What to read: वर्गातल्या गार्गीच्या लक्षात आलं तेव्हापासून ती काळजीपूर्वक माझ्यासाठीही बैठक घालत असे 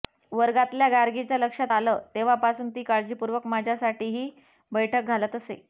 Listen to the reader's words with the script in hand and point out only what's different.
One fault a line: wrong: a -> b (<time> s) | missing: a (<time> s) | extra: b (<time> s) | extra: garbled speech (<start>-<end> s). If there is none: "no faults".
no faults